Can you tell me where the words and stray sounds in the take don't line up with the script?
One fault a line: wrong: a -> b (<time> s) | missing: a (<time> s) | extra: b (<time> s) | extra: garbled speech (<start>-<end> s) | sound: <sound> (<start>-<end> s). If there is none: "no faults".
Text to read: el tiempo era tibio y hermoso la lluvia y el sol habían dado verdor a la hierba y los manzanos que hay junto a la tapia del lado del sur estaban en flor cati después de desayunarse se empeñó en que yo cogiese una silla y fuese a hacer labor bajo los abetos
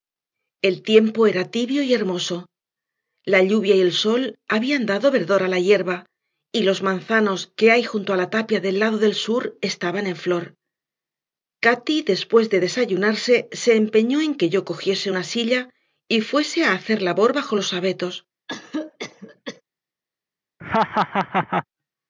sound: cough (18.5-19.6 s)
sound: laugh (20.6-21.6 s)